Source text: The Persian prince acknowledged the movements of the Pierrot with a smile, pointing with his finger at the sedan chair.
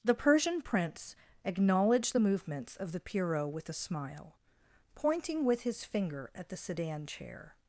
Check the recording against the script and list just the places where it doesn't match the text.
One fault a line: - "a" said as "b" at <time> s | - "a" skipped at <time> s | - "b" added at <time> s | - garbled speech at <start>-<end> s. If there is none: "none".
none